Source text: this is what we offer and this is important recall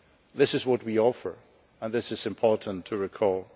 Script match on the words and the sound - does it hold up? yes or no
yes